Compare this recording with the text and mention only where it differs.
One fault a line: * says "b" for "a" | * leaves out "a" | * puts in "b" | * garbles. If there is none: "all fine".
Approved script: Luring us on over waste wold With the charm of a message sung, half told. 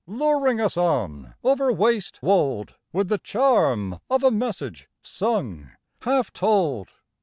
all fine